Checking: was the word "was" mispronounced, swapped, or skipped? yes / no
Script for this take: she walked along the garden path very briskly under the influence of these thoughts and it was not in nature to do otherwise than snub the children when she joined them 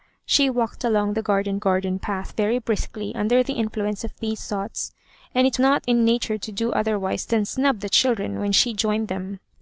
yes